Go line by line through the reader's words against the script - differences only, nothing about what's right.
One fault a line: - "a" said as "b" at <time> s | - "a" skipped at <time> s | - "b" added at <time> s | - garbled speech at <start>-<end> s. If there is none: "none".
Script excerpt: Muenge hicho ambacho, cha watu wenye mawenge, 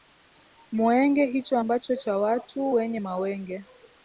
none